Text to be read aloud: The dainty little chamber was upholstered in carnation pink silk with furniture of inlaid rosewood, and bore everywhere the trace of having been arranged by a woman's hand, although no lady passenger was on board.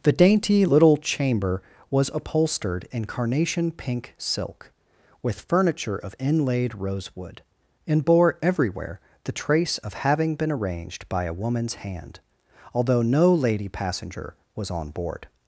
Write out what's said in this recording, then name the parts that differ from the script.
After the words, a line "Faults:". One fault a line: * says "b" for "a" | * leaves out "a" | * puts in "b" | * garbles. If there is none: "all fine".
The dainty little chamber was upholstered in carnation pink silk with furniture of inlaid rosewood, and bore everywhere the trace of having been arranged by a woman's hand, although no lady passenger was on board.
Faults:
all fine